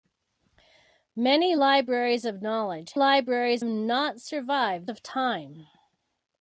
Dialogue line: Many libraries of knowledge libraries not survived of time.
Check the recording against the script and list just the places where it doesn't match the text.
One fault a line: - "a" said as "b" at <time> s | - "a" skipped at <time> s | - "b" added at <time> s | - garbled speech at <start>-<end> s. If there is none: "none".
none